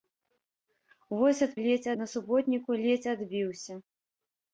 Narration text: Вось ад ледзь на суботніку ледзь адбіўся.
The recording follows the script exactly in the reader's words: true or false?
true